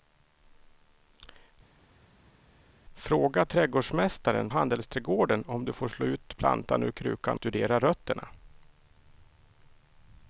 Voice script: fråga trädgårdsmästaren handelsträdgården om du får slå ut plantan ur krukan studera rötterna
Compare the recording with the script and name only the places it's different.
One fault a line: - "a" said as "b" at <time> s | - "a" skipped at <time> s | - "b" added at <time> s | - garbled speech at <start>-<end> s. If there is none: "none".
none